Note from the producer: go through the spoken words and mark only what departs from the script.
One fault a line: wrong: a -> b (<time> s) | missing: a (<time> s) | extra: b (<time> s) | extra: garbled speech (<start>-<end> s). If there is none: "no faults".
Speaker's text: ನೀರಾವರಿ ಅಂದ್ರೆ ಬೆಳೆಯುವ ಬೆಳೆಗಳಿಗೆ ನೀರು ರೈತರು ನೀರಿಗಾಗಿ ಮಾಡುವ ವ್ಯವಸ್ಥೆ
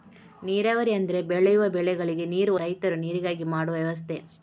no faults